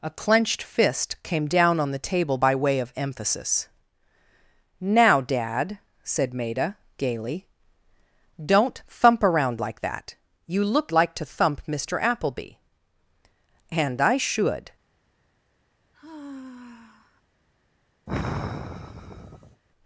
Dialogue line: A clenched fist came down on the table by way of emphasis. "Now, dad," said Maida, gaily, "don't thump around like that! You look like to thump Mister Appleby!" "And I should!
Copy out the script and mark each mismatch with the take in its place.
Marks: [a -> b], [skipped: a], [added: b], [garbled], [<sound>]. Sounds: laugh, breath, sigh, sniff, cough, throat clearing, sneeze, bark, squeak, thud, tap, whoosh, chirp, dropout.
A clenched fist came down on the table by way of emphasis. "Now, dad," said Maida, gaily, "don't thump around like that! You look like to thump Mister Appleby!" "And I should! [sigh] [sigh]